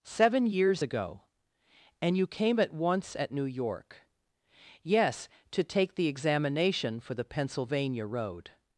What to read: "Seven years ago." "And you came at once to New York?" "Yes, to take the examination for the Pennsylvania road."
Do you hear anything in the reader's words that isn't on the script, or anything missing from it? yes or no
yes